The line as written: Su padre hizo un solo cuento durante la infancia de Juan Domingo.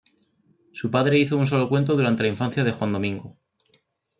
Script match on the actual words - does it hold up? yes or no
yes